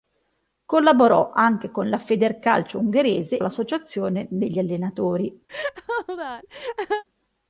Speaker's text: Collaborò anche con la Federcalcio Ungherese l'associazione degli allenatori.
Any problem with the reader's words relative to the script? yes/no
no